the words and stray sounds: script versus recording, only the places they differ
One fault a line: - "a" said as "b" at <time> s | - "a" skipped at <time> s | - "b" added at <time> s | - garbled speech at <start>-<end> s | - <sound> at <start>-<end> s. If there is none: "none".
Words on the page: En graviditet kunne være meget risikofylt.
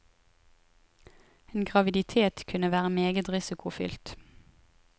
none